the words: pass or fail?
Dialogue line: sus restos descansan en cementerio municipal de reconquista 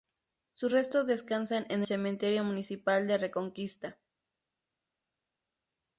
pass